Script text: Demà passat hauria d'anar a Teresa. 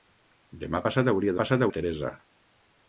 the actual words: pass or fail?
fail